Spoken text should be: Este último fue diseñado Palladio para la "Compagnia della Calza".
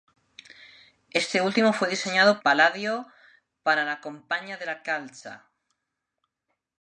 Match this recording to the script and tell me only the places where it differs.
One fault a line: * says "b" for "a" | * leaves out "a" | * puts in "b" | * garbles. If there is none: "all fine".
all fine